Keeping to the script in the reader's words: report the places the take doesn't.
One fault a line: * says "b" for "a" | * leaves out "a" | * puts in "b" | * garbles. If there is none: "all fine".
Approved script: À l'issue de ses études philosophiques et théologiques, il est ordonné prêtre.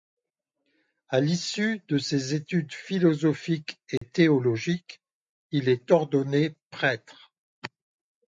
all fine